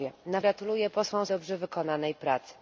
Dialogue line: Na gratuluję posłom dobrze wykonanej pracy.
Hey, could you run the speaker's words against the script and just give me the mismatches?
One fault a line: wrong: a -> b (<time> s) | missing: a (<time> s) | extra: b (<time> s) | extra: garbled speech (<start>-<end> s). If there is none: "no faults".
no faults